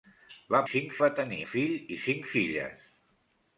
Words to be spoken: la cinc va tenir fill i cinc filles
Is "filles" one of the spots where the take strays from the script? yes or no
no